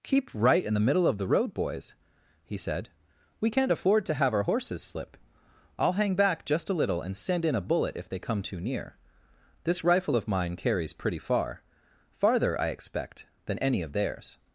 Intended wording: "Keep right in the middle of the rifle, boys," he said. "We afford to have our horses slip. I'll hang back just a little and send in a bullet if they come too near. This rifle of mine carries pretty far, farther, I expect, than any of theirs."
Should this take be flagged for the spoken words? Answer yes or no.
yes